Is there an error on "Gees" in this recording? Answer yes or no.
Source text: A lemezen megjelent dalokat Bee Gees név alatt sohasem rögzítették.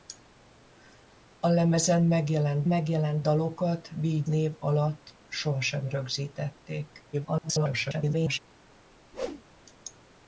yes